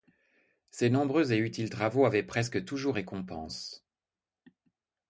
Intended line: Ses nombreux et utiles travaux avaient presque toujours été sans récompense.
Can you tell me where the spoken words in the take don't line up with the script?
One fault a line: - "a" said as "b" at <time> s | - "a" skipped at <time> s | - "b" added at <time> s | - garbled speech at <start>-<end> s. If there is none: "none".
- "été sans" skipped at 3.0 s